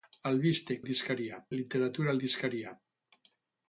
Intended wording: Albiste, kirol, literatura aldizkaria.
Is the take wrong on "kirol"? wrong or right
wrong